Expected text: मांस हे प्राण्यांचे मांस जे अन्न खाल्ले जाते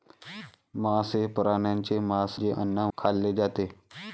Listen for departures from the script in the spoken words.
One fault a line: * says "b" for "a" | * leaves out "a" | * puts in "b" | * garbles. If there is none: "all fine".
all fine